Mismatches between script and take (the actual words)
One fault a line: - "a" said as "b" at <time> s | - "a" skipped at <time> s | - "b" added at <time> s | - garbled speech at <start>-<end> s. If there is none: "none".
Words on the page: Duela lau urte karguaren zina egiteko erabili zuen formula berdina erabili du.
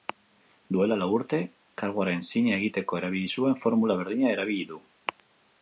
none